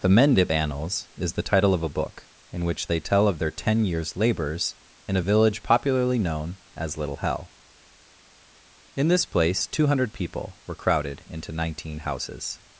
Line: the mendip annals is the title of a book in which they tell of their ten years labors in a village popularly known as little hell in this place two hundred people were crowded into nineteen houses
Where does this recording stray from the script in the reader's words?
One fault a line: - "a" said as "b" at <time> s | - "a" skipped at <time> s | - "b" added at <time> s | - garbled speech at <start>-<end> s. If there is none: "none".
none